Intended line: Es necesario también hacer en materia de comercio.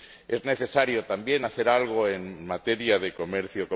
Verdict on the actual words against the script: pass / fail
fail